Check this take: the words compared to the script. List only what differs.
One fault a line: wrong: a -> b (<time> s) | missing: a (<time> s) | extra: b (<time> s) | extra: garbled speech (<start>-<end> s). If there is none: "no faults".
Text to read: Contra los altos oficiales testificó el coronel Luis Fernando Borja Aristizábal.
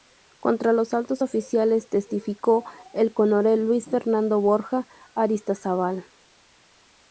no faults